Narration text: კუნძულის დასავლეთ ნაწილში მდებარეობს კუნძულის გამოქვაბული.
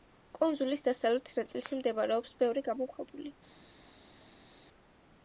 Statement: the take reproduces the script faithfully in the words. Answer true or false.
false